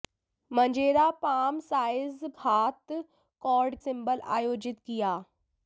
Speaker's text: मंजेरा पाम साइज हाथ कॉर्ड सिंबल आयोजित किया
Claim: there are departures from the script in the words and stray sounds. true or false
false